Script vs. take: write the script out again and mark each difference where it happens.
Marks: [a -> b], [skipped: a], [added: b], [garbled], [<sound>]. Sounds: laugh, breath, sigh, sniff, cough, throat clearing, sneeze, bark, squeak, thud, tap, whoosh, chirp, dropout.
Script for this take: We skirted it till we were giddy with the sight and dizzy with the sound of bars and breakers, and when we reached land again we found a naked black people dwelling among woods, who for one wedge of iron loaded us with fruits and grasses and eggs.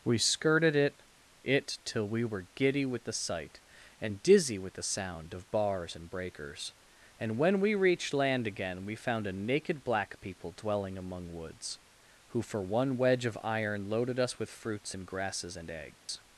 We skirted it [added: it] till we were giddy with the sight and dizzy with the sound of bars and breakers, and when we reached land again we found a naked black people dwelling among woods, who for one wedge of iron loaded us with fruits and grasses and eggs. [dropout]